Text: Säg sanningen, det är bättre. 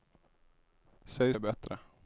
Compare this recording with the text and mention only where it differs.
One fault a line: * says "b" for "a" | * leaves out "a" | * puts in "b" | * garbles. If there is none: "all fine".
* leaves out "sanningen det"